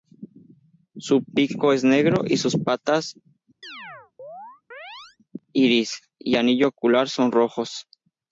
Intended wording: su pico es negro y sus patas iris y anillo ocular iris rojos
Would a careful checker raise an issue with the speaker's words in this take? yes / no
yes